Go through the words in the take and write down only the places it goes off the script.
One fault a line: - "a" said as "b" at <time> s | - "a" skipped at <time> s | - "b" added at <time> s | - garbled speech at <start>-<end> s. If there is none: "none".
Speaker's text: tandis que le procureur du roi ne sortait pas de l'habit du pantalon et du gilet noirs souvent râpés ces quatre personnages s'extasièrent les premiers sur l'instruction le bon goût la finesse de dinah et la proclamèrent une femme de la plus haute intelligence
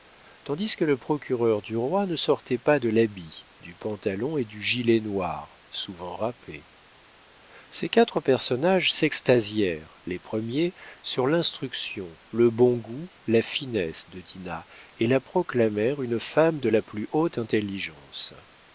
none